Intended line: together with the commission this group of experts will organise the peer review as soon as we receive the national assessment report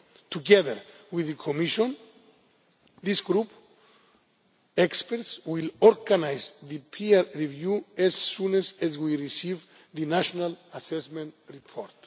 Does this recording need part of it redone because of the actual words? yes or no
no